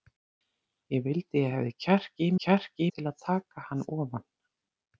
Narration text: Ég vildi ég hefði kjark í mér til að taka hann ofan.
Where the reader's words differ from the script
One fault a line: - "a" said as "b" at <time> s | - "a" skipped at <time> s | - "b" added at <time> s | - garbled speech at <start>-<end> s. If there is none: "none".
- "mér" said as "kjark" at 2.4 s